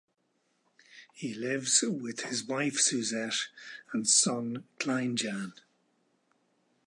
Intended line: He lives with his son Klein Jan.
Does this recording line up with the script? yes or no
no